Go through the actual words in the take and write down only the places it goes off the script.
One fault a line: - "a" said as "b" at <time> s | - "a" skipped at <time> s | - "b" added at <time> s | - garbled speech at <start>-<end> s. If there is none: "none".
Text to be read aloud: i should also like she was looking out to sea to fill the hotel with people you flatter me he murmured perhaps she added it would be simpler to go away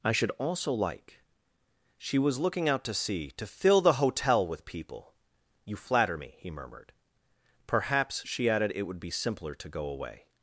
none